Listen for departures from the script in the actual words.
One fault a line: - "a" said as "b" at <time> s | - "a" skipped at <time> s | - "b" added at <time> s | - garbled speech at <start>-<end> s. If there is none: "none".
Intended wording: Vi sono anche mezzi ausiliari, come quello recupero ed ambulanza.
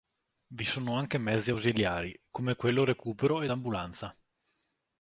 none